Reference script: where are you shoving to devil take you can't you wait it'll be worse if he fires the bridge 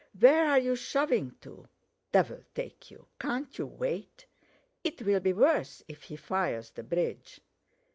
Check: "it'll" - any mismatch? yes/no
no